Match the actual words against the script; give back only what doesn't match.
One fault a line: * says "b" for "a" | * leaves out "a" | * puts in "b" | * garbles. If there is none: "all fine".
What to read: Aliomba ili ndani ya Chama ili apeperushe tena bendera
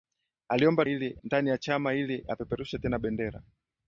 all fine